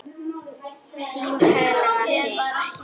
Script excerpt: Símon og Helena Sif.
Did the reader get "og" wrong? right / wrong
wrong